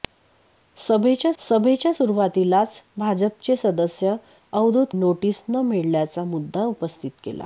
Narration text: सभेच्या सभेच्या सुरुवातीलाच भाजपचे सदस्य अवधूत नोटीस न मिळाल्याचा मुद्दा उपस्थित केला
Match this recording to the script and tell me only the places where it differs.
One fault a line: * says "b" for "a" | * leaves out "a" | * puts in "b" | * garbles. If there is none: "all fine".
all fine